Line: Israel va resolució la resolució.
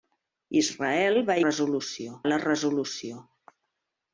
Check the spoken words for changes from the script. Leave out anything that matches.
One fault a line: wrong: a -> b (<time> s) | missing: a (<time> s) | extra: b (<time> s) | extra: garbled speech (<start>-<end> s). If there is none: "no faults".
no faults